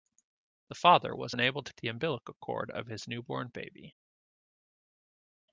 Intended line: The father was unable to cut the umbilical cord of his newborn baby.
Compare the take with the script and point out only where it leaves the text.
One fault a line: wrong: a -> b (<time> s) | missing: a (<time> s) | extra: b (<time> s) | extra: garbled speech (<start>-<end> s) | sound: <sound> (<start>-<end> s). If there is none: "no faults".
missing: cut (1.7 s)